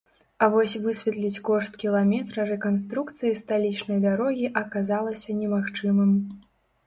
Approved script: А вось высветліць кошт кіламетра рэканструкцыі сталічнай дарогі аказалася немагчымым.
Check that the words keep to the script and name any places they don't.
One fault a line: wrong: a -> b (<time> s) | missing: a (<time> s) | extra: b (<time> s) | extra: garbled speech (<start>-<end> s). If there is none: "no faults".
no faults